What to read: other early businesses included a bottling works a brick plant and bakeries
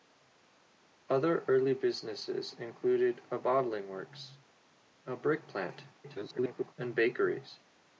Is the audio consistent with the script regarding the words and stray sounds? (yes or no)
no